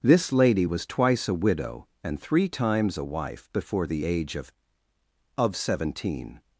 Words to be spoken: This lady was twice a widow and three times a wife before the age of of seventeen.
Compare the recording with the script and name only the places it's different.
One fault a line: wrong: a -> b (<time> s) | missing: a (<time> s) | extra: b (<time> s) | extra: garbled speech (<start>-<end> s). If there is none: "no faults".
no faults